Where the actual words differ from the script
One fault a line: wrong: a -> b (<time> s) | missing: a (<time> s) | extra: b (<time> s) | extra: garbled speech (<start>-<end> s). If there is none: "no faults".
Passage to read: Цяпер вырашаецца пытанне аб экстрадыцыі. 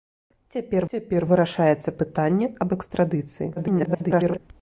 extra: цяпер (0.9 s)
extra: garbled speech (3.6-4.4 s)